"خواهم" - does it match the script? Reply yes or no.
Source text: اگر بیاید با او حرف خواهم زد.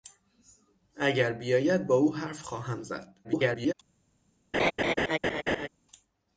yes